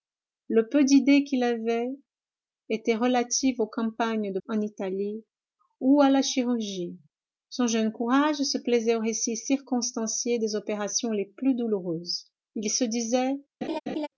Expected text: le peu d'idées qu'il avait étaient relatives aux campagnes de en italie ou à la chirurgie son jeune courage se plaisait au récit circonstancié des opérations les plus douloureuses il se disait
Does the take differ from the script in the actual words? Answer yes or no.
no